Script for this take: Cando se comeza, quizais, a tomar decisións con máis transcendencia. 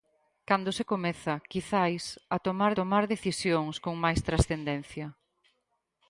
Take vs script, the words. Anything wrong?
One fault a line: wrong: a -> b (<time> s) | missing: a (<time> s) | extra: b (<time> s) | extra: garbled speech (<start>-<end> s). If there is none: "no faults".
extra: tomar (2.8 s)